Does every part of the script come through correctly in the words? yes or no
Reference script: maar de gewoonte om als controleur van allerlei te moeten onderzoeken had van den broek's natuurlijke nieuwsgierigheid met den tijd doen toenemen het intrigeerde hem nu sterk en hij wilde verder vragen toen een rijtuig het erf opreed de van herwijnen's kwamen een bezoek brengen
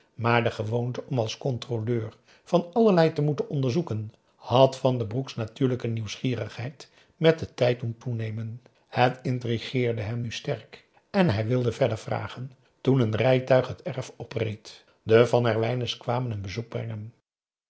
yes